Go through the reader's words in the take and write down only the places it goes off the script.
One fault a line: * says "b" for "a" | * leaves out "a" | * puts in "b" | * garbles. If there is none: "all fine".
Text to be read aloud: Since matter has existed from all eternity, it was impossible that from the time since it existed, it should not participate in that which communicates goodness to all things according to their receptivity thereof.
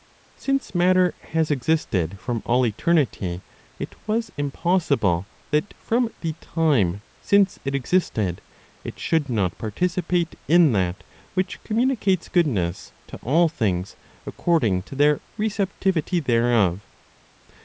all fine